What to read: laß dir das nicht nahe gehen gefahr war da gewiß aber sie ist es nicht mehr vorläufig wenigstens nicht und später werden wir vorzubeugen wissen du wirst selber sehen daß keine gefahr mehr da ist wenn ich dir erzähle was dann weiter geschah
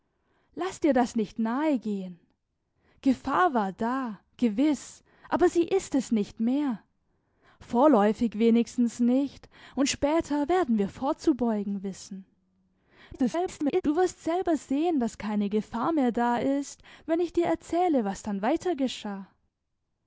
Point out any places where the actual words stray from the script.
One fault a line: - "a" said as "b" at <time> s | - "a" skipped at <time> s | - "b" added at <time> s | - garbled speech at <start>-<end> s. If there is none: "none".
- garbled speech at 13.1-13.8 s